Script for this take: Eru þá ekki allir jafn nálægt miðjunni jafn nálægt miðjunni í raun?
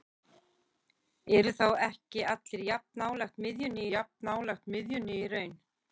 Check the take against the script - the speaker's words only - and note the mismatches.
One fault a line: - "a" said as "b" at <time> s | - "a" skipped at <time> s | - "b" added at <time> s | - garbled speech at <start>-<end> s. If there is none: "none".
none